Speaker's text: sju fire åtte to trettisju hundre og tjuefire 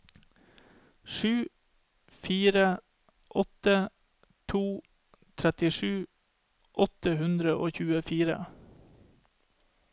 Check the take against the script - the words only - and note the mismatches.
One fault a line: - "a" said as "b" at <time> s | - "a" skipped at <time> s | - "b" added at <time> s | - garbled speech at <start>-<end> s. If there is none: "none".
- "åtte" added at 6.9 s